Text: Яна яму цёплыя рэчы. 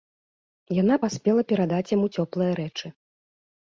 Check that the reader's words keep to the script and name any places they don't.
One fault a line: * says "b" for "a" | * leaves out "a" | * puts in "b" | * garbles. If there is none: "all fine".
* puts in "паспела перадаць"